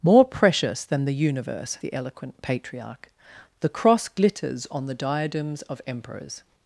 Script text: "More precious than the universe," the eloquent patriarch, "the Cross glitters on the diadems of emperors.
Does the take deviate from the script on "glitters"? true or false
false